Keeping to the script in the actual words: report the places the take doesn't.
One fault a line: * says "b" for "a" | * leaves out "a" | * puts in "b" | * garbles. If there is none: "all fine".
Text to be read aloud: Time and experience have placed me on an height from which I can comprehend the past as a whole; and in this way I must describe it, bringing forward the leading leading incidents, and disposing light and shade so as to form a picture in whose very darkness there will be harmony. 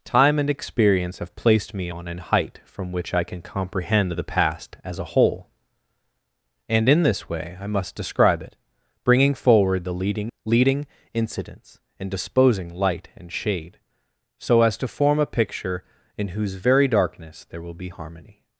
all fine